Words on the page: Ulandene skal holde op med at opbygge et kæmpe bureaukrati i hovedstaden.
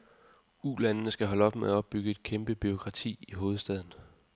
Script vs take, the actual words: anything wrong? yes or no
no